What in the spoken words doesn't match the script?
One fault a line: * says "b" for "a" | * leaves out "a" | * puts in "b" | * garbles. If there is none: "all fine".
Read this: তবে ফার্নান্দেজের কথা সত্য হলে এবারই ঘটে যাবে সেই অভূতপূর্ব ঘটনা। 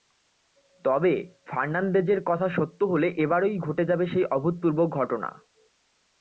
all fine